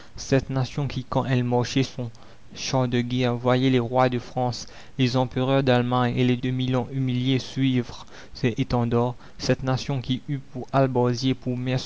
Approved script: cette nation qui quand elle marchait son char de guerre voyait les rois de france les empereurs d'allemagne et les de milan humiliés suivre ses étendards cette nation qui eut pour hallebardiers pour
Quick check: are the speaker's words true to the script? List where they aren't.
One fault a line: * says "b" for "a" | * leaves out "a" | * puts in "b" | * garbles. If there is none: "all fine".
all fine